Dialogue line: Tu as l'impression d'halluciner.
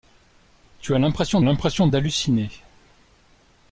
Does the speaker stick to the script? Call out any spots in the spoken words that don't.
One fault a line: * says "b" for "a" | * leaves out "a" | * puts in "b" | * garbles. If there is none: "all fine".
* puts in "l'impression"